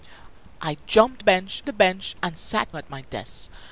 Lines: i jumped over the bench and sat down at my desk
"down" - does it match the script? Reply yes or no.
no